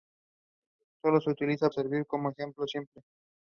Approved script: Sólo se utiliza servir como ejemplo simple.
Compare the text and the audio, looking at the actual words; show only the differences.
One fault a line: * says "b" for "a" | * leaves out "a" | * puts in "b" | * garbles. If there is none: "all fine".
all fine